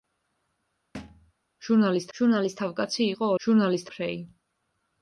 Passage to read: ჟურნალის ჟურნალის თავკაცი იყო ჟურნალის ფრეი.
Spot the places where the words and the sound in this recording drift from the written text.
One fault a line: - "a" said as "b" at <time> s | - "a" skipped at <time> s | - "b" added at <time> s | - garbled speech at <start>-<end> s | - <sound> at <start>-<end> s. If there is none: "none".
- thud at 0.9-1.3 s